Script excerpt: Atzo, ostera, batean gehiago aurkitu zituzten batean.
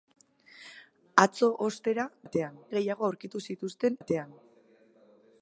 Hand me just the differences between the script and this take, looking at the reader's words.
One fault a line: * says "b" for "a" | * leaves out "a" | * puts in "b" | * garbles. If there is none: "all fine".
all fine